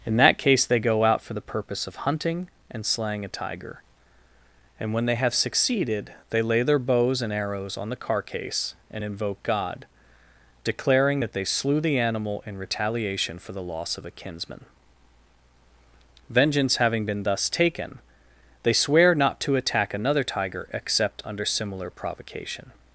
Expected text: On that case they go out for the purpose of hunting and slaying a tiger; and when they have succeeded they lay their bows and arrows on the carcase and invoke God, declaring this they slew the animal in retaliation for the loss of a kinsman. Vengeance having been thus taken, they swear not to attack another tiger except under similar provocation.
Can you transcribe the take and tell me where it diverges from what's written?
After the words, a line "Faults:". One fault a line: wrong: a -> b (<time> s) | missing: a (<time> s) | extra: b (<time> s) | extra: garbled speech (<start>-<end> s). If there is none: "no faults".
In that case they go out for the purpose of hunting and slaying a tiger; and when they have succeeded they lay their bows and arrows on the carcase and invoke God, declaring that they slew the animal in retaliation for the loss of a kinsman. Vengeance having been thus taken, they swear not to attack another tiger except under similar provocation.
Faults:
wrong: On -> In (0.1 s)
wrong: this -> that (11.2 s)